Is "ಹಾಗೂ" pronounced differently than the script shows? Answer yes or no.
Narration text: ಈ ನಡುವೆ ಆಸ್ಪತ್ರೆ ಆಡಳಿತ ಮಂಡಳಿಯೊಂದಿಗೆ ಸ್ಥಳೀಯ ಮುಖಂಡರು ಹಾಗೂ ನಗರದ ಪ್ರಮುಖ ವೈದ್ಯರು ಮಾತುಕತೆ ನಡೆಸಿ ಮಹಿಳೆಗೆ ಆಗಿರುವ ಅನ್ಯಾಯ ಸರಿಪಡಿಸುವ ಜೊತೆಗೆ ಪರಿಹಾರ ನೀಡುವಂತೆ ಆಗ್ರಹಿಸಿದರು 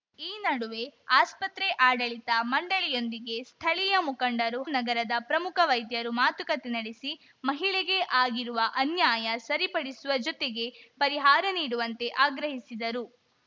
yes